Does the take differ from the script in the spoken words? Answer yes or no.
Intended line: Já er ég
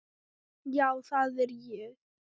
yes